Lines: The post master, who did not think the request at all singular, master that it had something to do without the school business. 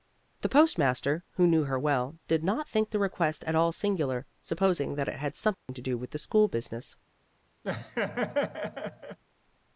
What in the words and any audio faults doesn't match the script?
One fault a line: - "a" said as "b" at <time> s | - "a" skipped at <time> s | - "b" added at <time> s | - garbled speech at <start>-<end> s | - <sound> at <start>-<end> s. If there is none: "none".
- "knew her well" added at 1.4 s
- "master" said as "supposing" at 4.4 s
- dropout at 5.5-5.7 s
- "without" said as "with" at 6.0 s
- laugh at 7.6-9.2 s